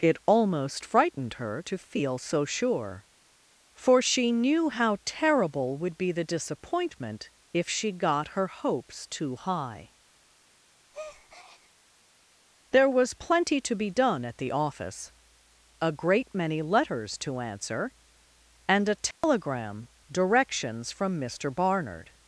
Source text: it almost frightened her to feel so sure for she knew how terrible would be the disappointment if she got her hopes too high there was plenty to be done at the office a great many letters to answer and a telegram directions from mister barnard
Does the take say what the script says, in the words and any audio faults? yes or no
no